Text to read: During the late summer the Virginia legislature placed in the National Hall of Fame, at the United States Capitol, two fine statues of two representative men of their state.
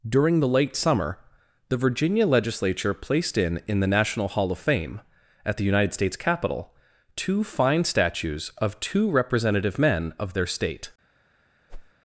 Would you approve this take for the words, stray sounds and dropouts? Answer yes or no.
no